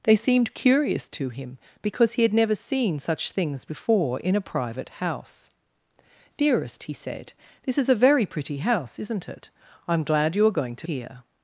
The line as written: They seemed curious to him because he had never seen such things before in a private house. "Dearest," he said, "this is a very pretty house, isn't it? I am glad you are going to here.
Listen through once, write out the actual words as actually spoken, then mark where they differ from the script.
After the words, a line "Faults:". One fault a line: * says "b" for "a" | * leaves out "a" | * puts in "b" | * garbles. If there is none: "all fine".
They seemed curious to him because he had never seen such things before in a private house. "Dearest," he said, "this is a very pretty house, isn't it? I am glad you are going to here.
Faults:
all fine